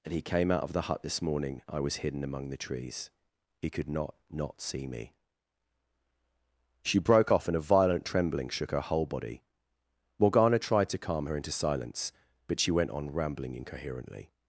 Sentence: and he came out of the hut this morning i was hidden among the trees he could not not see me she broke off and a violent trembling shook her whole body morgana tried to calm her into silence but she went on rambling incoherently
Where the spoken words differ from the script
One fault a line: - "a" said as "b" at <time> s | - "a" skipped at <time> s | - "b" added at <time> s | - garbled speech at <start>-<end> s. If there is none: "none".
none